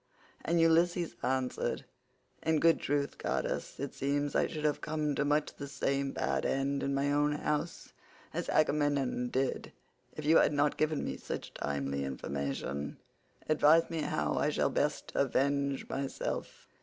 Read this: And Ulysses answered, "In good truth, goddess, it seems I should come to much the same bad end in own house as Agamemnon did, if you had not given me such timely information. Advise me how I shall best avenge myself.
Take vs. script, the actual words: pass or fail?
fail